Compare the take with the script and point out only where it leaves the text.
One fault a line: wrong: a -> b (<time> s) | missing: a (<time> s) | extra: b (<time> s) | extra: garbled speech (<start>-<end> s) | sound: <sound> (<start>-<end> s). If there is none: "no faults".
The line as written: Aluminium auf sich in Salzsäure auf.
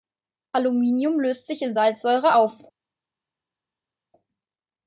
wrong: auf -> löst (1.2 s)